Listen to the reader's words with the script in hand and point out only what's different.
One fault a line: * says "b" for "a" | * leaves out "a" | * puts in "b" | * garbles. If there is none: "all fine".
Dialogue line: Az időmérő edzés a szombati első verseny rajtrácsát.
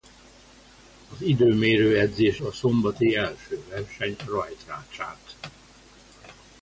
all fine